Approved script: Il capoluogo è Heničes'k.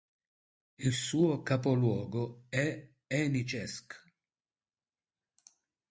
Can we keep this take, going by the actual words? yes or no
no